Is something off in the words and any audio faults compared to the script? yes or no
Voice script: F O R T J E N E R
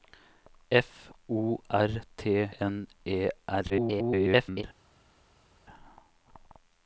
yes